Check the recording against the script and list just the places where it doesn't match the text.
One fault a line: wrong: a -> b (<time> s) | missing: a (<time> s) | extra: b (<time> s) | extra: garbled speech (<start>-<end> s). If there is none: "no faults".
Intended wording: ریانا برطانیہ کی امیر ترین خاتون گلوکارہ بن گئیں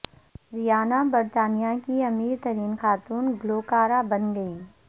no faults